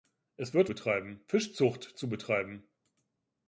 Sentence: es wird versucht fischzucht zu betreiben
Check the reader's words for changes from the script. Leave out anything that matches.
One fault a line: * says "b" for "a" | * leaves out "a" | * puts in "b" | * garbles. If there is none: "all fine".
* says "betreiben" for "versucht"